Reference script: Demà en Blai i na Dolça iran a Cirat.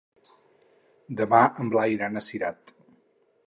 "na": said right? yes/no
no